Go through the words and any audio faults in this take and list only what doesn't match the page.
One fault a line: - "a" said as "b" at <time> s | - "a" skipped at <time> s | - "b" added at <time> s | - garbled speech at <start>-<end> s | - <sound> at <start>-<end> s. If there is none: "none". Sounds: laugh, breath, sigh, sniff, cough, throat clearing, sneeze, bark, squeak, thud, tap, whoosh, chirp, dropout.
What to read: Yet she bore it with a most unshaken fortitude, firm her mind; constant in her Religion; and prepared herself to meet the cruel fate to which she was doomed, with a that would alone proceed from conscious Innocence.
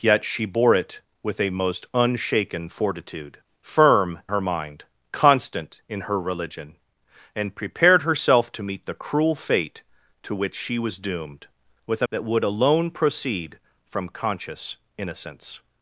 none